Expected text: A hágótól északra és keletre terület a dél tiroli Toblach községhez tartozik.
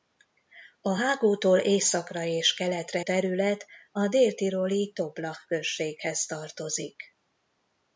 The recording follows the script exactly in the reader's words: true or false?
true